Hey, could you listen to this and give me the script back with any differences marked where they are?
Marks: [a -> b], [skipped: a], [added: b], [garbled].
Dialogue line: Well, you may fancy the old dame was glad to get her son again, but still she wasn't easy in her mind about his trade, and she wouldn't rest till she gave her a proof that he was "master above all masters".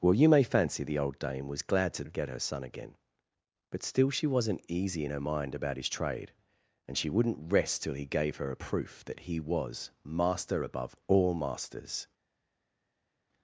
Well, you may fancy the old dame was glad to get her son again, but still she wasn't easy in her mind about his trade, and she wouldn't rest till [she -> he] gave her a proof that he was "master above all masters".